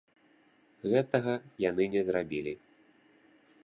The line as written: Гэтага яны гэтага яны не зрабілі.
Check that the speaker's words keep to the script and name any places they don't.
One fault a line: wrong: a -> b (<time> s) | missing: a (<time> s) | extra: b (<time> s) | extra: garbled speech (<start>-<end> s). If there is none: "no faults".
missing: гэтага яны (1.8 s)